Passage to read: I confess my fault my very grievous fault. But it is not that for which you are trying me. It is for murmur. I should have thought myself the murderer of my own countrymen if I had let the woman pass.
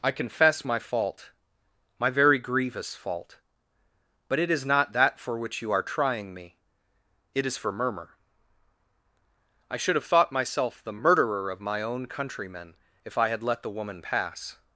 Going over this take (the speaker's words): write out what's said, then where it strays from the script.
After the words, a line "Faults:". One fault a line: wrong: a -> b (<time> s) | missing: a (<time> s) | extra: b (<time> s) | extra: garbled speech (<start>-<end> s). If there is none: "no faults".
I confess my fault my very grievous fault. But it is not that for which you are trying me. It is for murmur. I should have thought myself the murderer of my own countrymen if I had let the woman pass.
Faults:
no faults